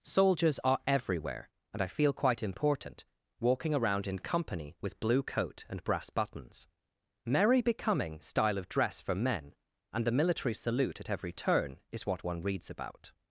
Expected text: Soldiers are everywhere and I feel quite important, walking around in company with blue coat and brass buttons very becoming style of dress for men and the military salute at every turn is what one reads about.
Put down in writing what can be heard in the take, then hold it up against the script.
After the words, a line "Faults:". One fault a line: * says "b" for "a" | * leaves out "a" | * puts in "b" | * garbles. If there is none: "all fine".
Soldiers are everywhere and I feel quite important, walking around in company with blue coat and brass buttons merry becoming style of dress for men and the military salute at every turn is what one reads about.
Faults:
* says "merry" for "very"